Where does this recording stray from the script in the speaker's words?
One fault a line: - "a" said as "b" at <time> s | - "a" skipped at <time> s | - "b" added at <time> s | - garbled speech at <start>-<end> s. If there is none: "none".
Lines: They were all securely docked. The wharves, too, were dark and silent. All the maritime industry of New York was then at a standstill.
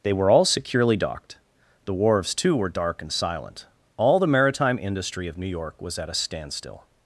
- "then" skipped at 6.0 s